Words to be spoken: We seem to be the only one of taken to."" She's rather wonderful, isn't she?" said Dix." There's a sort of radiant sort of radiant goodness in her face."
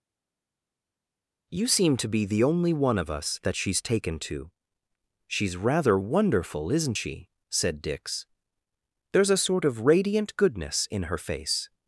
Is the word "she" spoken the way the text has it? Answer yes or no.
yes